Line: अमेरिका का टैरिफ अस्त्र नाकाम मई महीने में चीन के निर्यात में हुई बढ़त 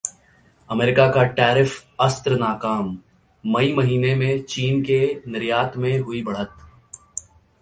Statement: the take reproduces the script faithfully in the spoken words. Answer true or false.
true